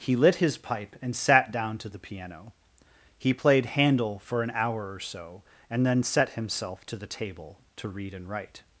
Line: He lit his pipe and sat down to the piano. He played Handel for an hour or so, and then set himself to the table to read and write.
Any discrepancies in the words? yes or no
no